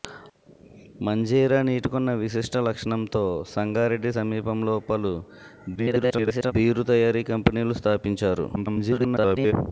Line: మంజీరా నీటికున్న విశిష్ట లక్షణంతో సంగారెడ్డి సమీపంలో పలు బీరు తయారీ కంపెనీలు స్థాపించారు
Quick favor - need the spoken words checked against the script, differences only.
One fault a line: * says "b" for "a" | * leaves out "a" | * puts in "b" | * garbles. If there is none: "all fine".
* garbles
* garbles